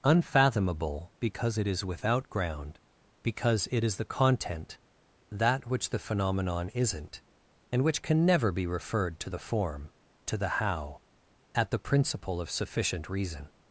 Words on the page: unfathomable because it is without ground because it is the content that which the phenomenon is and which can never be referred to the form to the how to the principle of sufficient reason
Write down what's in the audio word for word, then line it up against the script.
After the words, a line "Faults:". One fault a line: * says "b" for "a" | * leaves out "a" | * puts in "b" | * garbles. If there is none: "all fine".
unfathomable because it is without ground because it is the content that which the phenomenon isn't and which can never be referred to the form to the how at the principle of sufficient reason
Faults:
* says "isn't" for "is"
* says "at" for "to"